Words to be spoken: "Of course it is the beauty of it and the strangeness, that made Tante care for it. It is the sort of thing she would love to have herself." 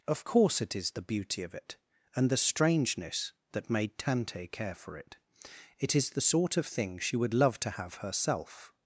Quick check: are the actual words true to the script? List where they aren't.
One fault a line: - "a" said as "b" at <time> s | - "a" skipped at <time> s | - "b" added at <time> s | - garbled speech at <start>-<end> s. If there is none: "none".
none